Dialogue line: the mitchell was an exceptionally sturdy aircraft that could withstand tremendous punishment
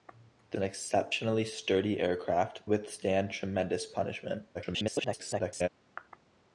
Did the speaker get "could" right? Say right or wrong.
wrong